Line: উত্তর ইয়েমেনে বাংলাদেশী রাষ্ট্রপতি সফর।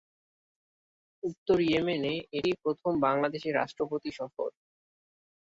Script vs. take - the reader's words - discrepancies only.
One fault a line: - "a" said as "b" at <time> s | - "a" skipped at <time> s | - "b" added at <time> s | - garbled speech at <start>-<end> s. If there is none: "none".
- "এটিই প্রথম" added at 2.4 s